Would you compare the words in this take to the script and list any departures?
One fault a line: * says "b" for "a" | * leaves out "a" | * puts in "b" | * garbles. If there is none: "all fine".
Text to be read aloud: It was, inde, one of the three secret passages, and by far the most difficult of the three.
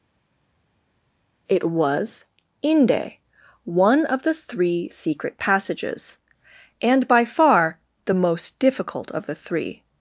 all fine